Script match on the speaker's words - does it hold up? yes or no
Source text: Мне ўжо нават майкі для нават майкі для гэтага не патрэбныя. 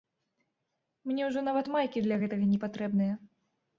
no